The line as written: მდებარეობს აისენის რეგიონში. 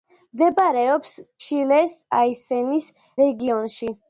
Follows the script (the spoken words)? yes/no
no